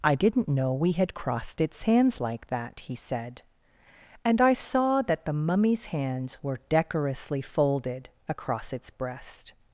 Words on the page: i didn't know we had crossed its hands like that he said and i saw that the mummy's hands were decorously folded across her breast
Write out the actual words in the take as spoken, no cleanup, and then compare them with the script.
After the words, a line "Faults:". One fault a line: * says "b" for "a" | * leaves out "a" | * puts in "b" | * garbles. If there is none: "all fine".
i didn't know we had crossed its hands like that he said and i saw that the mummy's hands were decorously folded across its breast
Faults:
* says "its" for "her"